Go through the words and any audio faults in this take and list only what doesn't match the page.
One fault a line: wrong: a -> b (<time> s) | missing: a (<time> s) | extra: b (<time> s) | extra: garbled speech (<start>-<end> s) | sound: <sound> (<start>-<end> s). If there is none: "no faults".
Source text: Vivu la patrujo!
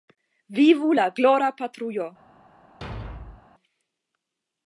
extra: glora (1.2 s)
sound: thud (2.8-3.5 s)